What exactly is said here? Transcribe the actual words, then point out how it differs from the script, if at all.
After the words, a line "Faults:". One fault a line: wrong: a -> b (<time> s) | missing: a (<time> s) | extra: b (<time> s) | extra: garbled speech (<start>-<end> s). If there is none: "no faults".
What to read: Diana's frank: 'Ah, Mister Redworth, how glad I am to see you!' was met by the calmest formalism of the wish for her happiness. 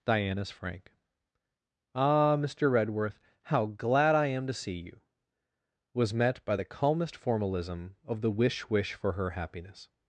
Diana's frank: 'Ah, Mister Redworth, how glad I am to see you!' was met by the calmest formalism of the wish wish for her happiness.
Faults:
extra: wish (8.7 s)